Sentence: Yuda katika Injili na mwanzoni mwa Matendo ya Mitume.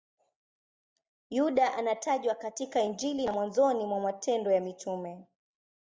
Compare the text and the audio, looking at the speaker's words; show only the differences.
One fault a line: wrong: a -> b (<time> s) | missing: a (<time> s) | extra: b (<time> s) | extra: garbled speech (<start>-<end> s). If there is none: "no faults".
extra: anatajwa (1.7 s)